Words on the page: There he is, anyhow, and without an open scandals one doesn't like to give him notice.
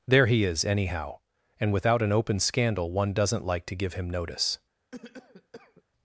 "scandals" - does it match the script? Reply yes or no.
no